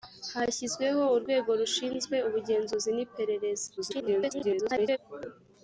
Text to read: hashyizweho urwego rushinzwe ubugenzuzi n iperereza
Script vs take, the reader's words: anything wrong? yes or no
yes